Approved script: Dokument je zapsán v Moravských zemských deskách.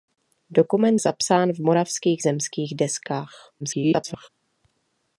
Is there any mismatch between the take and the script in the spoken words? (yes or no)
yes